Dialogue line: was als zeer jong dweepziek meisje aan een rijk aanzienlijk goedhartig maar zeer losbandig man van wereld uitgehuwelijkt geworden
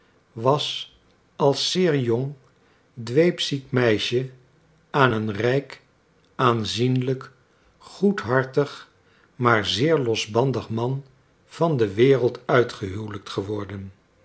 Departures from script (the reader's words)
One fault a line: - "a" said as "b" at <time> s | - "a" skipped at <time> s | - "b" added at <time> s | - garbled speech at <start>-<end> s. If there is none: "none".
- "de" added at 11.8 s